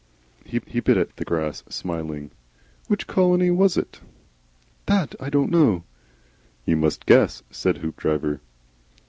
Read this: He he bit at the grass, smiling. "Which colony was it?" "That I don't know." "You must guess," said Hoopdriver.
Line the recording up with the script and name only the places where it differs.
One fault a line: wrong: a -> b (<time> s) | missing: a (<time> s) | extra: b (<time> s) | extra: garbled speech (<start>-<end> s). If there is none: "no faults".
no faults